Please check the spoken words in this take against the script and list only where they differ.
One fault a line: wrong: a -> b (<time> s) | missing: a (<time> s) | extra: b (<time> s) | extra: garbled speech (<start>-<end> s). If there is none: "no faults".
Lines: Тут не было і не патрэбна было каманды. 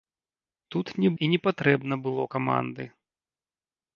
missing: было (1.1 s)